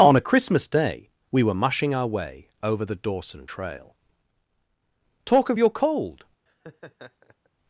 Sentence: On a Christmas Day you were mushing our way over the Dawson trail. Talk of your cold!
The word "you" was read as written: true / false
false